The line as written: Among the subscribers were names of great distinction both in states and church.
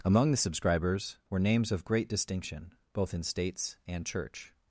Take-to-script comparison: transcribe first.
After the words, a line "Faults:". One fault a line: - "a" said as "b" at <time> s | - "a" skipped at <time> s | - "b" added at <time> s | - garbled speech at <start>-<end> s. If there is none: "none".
Among the subscribers were names of great distinction both in states and church.
Faults:
none